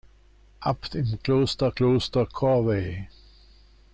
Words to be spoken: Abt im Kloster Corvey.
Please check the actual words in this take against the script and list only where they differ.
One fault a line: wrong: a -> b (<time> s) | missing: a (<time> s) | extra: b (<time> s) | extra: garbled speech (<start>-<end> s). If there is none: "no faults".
extra: Kloster (1.7 s)